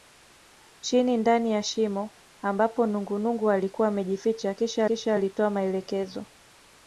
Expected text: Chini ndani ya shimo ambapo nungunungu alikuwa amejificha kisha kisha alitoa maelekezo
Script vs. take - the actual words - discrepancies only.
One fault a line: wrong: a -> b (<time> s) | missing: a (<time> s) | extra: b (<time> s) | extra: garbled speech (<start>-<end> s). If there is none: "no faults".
no faults